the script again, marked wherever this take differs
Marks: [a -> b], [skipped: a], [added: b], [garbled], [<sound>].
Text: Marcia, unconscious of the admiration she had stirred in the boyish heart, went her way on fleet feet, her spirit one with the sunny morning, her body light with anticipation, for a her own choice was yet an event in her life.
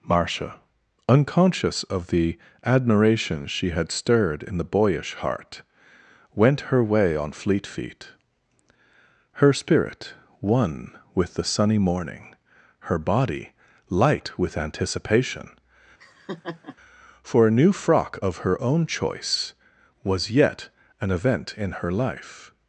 Marcia, unconscious of the admiration she had stirred in the boyish heart, went her way on fleet feet, her spirit one with the sunny morning, her body light with anticipation, [laugh] for a [added: new frock of] her own choice was yet an event in her life.